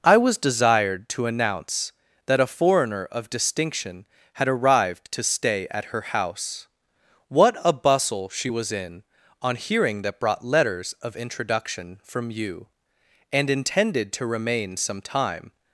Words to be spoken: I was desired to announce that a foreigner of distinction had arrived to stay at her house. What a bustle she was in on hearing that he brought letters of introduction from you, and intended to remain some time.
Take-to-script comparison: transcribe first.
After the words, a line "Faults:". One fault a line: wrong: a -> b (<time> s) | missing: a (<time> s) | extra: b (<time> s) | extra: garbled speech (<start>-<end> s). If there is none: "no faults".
I was desired to announce that a foreigner of distinction had arrived to stay at her house. What a bustle she was in on hearing that brought letters of introduction from you, and intended to remain some time.
Faults:
missing: he (10.2 s)